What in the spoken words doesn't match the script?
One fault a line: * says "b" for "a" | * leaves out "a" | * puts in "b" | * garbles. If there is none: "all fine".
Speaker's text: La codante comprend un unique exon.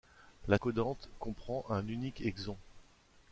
all fine